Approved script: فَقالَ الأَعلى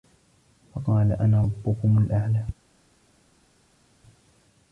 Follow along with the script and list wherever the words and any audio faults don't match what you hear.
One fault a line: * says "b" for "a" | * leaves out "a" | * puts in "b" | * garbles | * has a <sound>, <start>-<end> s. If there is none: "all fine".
* puts in "أَنا رَبُّكُمُ"